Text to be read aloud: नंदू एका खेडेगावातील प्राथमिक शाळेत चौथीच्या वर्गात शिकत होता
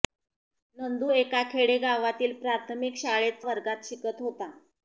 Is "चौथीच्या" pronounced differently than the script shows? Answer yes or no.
yes